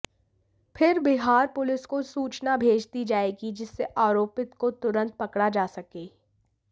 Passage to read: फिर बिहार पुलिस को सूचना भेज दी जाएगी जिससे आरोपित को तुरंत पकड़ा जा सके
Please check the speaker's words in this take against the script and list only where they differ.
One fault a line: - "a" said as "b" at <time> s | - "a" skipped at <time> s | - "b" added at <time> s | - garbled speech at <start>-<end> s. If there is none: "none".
none